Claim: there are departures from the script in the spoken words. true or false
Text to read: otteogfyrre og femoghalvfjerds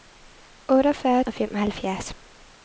false